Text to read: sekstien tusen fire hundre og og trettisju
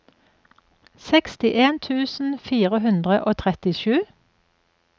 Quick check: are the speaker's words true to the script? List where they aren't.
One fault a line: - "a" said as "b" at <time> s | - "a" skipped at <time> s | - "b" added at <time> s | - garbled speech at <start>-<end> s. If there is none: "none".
- "og" skipped at 3.4 s